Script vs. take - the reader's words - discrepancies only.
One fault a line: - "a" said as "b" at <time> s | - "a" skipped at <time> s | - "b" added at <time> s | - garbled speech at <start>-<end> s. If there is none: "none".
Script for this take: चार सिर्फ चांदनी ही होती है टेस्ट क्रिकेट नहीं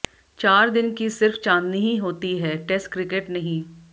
- "दिन की" added at 0.7 s